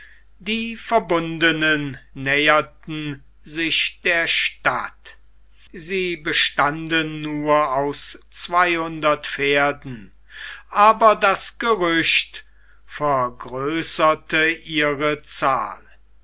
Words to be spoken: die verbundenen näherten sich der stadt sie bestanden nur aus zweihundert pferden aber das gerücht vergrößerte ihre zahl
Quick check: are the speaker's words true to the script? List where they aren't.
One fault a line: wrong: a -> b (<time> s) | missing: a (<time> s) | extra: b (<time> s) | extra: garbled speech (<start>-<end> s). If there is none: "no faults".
no faults